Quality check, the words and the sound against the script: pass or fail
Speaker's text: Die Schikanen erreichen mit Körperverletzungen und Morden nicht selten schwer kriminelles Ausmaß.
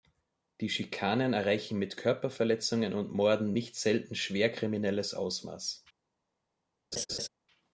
fail